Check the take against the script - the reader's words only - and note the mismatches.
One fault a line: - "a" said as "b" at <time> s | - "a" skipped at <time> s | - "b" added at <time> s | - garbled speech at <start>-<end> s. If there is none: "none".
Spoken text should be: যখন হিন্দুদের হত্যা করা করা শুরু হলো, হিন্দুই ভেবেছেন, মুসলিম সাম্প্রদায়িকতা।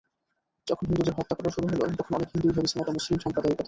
- "করা" skipped at 1.5 s
- "তখন অনেক" added at 2.0 s
- "এটা" added at 2.8 s